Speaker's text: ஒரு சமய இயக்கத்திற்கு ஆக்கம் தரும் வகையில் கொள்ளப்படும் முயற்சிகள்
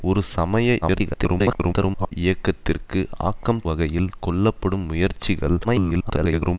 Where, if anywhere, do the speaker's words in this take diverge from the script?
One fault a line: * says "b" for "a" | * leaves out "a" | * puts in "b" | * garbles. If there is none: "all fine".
* garbles
* leaves out "தரும்"
* garbles